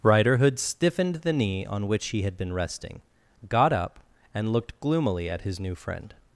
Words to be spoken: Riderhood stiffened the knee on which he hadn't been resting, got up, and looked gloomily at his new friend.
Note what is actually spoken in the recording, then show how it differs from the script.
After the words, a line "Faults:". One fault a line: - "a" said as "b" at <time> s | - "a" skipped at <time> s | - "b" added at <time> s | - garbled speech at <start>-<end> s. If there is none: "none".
Riderhood stiffened the knee on which he had been resting, got up, and looked gloomily at his new friend.
Faults:
- "hadn't" said as "had" at 2.2 s